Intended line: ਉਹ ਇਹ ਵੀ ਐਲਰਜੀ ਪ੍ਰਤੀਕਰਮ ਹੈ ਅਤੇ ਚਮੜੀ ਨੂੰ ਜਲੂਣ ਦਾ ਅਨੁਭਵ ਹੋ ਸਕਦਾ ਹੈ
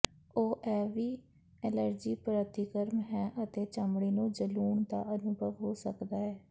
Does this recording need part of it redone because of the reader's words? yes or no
no